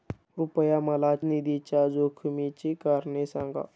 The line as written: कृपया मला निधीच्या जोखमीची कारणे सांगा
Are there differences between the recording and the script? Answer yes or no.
no